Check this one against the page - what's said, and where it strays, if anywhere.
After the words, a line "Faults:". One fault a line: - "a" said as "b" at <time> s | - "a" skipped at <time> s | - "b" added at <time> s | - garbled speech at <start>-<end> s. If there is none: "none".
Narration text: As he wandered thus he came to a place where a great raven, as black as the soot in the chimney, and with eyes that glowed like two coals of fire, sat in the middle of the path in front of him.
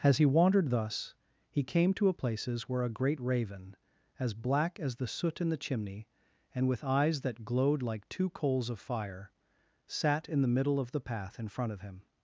As he wandered thus he came to a places where a great raven, as black as the soot in the chimney, and with eyes that glowed like two coals of fire, sat in the middle of the path in front of him.
Faults:
- "place" said as "places" at 2.1 s